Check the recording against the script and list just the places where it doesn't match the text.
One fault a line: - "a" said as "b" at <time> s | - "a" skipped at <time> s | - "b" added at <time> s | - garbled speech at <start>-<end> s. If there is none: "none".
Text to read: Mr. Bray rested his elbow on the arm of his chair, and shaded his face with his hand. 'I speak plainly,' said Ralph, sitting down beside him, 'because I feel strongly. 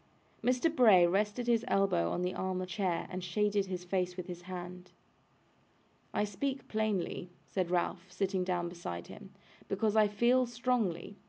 - "his" skipped at 2.7 s